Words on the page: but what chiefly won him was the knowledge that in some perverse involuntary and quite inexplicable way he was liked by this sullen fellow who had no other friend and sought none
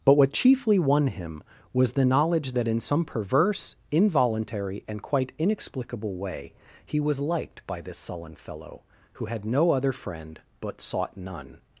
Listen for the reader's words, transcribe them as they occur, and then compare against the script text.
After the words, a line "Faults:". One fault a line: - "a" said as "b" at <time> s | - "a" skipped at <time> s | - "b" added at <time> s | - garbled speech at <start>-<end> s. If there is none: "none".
but what chiefly won him was the knowledge that in some perverse involuntary and quite inexplicable way he was liked by this sullen fellow who had no other friend but sought none
Faults:
- "and" said as "but" at 10.6 s